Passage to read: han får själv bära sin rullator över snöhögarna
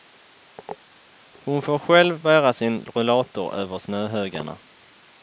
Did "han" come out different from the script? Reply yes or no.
yes